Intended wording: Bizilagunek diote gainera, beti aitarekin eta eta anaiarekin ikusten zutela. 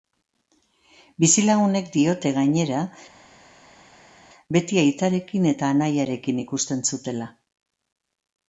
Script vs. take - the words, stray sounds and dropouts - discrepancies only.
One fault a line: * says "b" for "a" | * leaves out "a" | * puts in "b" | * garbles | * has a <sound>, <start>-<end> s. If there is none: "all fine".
* leaves out "eta"